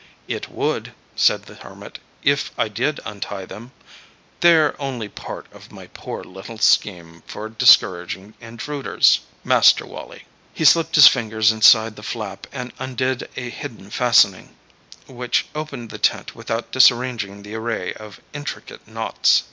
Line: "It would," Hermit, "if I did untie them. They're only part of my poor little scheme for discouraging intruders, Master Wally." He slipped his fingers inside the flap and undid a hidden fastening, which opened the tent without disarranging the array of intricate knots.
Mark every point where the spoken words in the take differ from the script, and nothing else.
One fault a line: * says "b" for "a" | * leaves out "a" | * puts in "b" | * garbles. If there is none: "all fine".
* puts in "said the"